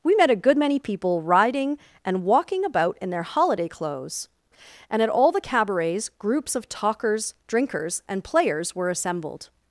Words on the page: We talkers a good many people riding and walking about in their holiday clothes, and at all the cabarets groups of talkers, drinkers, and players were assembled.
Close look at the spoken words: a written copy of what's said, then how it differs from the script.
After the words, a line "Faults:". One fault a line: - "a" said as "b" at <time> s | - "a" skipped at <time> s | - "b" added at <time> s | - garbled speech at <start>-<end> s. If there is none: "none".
We met a good many people riding and walking about in their holiday clothes, and at all the cabarets groups of talkers, drinkers, and players were assembled.
Faults:
- "talkers" said as "met" at 0.1 s